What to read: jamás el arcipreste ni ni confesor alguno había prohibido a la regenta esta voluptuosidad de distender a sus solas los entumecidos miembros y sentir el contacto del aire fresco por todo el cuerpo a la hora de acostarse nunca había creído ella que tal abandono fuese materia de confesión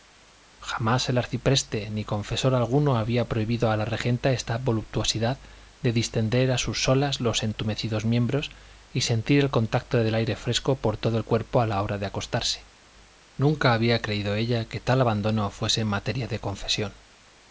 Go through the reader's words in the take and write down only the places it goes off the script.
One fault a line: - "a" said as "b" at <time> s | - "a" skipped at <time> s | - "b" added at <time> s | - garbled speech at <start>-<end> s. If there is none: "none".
- "ni" skipped at 2.0 s